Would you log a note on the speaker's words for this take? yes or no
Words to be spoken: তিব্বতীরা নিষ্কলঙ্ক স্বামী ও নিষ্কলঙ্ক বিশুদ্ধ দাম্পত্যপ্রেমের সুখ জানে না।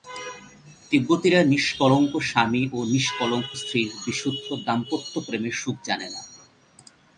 yes